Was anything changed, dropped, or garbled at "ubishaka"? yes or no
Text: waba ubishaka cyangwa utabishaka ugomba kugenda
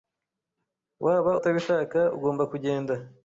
yes